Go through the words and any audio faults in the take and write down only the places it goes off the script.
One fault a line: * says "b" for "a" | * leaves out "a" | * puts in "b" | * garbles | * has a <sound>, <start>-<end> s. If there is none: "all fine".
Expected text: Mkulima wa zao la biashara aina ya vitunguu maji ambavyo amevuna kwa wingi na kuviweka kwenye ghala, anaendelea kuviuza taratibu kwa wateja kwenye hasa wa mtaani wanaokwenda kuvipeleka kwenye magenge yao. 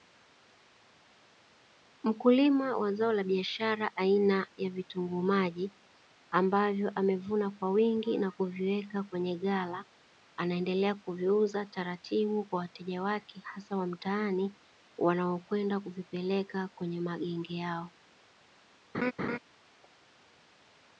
* says "wake" for "kwenye"
* has a laugh, 18.9-19.4 s